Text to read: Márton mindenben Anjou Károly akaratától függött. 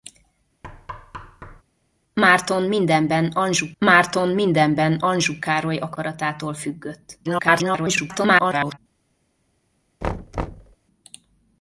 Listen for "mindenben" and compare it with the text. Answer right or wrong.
right